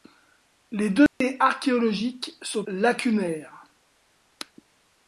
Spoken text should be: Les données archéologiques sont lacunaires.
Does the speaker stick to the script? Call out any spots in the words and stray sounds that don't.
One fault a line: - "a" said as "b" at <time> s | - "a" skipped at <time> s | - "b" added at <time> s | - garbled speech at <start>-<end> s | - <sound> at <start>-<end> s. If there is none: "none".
- dropout at 1.1-1.2 s